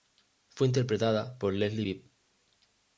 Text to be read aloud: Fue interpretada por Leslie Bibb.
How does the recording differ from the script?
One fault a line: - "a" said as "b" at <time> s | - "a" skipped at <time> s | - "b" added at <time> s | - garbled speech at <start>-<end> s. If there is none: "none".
none